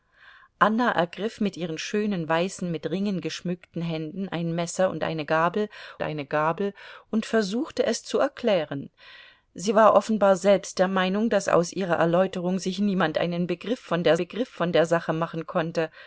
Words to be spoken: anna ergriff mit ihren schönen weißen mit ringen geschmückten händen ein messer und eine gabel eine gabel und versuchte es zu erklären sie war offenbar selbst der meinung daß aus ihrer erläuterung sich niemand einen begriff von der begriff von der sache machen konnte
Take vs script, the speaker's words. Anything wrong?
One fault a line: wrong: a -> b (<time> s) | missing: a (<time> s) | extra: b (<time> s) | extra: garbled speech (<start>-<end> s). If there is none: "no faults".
no faults